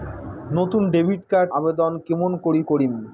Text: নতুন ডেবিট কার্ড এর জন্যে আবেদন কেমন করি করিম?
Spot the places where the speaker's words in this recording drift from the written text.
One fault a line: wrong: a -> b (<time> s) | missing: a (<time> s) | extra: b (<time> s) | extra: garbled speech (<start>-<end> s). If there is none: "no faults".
missing: এর জন্যে (1.5 s)